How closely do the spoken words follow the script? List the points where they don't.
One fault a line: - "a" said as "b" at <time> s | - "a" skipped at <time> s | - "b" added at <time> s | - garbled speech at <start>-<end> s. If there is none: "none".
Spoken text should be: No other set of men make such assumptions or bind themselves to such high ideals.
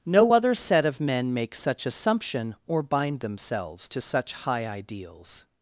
- "assumptions" said as "assumption" at 1.9 s